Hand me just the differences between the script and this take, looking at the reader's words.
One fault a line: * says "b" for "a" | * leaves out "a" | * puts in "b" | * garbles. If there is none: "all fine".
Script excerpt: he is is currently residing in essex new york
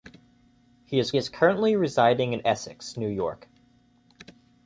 all fine